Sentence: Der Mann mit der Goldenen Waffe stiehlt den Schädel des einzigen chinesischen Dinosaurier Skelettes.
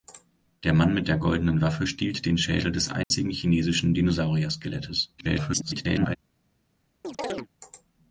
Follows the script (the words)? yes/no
no